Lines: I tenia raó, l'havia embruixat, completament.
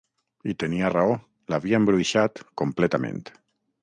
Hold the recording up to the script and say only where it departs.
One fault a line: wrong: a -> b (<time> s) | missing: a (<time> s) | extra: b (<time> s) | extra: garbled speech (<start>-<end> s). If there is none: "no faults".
no faults